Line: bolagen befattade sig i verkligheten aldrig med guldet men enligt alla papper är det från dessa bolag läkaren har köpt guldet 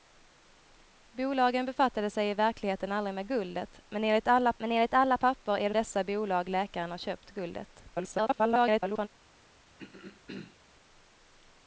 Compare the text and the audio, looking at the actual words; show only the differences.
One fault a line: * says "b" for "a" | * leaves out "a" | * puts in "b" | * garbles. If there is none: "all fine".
* puts in "men enligt alla"
* leaves out "från"
* garbles